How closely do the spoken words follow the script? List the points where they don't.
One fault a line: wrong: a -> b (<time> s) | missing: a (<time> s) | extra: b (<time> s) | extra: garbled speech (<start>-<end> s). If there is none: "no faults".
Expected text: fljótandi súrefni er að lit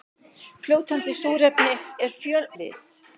no faults